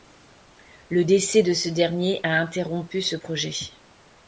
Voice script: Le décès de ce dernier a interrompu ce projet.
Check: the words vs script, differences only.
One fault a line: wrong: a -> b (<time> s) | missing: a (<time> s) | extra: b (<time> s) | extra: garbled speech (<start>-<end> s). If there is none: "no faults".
no faults